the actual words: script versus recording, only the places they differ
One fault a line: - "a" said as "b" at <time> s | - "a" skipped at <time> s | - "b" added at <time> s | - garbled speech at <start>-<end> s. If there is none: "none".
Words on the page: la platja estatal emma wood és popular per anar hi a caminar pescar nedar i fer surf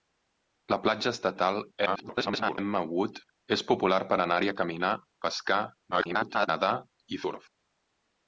- garbled speech at 1.9-2.6 s
- garbled speech at 5.9-6.5 s
- "fer" skipped at 7.2 s